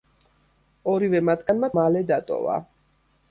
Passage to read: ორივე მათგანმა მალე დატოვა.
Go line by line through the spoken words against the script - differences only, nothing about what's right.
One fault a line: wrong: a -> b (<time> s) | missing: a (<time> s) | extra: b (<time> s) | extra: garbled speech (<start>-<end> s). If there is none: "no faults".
no faults